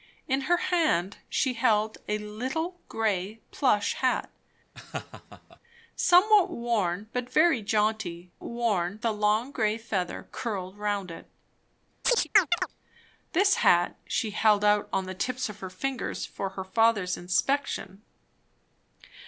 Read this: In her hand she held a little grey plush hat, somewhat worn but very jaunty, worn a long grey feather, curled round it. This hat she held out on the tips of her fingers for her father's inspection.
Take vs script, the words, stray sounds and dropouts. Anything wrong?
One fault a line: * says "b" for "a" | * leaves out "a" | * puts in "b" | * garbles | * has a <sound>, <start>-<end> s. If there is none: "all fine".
* has a laugh, 4.7-5.6 s
* has a chirp, 12.0-12.7 s